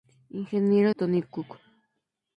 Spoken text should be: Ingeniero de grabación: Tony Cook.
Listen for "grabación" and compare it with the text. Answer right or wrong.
wrong